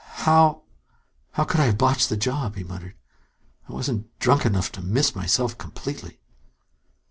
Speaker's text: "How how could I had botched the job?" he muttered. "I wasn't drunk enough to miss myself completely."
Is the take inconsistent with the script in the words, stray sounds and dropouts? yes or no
yes